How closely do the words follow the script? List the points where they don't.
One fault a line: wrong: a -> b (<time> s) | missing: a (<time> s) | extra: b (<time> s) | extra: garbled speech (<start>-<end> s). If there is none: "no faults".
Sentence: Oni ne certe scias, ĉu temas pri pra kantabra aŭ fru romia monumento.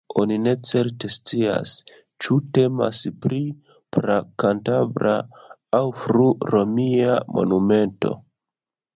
no faults